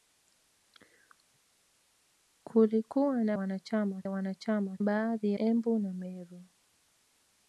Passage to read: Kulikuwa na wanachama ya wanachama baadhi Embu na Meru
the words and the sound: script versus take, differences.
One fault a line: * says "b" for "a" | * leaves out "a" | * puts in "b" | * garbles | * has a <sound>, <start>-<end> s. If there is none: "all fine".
all fine